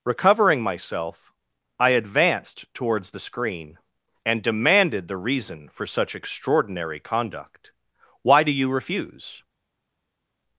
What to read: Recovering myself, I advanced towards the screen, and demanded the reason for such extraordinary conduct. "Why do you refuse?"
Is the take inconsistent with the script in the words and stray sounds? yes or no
no